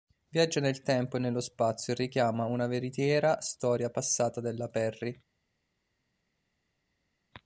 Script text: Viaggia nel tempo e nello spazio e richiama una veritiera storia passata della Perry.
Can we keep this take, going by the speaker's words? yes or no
yes